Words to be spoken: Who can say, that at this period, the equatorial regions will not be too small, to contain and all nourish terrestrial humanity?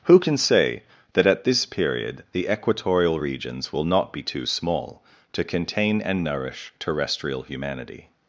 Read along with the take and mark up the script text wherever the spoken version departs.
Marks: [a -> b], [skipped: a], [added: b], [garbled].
Who can say, that at this period, the equatorial regions will not be too small, to contain and [skipped: all] nourish terrestrial humanity?